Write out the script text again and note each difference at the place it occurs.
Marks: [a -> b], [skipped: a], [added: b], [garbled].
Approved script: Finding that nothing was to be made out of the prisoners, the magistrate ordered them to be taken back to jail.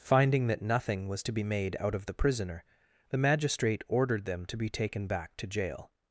Finding that nothing was to be made out of the [prisoners, -> prisoner] the magistrate ordered them to be taken back to jail.